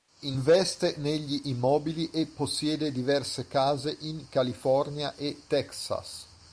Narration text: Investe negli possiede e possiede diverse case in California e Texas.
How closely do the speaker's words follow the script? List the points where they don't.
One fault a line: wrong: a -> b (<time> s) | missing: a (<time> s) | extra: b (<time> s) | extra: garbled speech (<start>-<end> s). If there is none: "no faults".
wrong: possiede -> immobili (1.5 s)